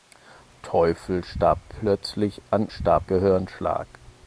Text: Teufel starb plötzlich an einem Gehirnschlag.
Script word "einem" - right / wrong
wrong